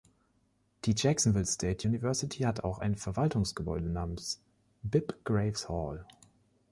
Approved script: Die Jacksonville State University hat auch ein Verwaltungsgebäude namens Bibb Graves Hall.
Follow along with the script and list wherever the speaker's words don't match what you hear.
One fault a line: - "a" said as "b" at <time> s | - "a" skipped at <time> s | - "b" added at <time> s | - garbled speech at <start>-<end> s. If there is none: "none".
none